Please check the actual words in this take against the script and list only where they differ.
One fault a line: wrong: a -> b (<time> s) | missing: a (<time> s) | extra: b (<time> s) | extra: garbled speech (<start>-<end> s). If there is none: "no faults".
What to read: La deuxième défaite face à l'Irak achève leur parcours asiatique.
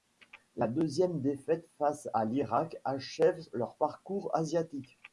no faults